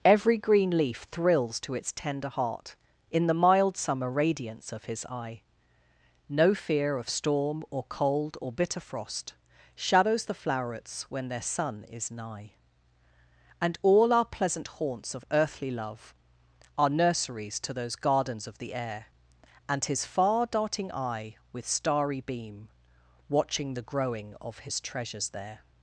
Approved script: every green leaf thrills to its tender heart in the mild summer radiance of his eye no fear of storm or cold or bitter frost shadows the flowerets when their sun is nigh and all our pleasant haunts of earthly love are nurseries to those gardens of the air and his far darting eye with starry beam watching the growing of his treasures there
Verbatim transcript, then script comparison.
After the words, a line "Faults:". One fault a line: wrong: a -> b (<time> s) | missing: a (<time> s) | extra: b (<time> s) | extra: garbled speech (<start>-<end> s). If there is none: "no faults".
every green leaf thrills to its tender heart in the mild summer radiance of his eye no fear of storm or cold or bitter frost shadows the flowerets when their sun is nigh and all our pleasant haunts of earthly love are nurseries to those gardens of the air and his far darting eye with starry beam watching the growing of his treasures there
Faults:
no faults